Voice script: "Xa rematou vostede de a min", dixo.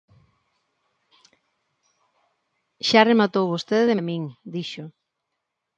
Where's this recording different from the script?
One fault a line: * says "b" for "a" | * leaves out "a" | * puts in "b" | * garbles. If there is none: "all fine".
all fine